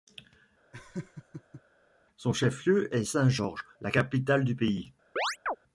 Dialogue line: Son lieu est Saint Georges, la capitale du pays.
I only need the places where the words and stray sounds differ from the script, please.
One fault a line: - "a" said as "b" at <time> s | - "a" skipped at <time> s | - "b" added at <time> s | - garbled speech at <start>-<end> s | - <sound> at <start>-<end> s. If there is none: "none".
- laugh at 0.7-1.6 s
- "chef" added at 2.3 s
- chirp at 5.2-5.6 s